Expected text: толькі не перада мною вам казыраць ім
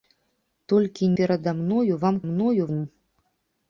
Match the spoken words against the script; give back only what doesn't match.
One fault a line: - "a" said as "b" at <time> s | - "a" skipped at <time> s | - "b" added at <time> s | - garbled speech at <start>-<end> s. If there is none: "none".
- "не" skipped at 1.1 s
- "казыраць" said as "мною" at 2.3 s